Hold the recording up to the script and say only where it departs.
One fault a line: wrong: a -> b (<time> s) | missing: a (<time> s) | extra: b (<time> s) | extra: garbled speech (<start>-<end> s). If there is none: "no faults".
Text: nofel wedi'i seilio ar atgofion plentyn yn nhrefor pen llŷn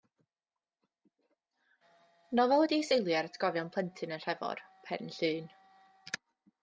no faults